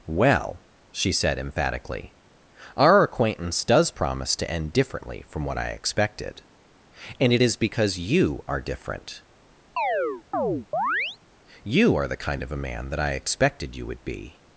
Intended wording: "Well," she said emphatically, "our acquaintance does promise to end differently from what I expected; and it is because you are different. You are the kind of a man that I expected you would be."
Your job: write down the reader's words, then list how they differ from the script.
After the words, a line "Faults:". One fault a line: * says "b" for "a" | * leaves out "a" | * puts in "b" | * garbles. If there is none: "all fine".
"Well," she said emphatically, "our acquaintance does promise to end differently from what I expected; and it is because you are different. You are the kind of a man that I expected you would be."
Faults:
all fine